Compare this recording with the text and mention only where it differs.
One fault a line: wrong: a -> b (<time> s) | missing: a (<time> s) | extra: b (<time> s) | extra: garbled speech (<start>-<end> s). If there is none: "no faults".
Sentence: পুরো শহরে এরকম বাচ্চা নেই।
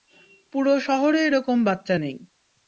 no faults